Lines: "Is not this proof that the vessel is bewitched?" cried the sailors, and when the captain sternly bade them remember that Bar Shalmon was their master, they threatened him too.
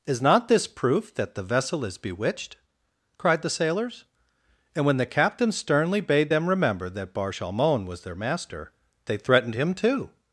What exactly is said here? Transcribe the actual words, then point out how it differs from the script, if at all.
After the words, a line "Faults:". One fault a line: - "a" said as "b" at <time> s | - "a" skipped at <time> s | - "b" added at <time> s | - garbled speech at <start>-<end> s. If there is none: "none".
"Is not this proof that the vessel is bewitched?" cried the sailors, and when the captain sternly bade them remember that Bar Shalmon was their master, they threatened him too.
Faults:
none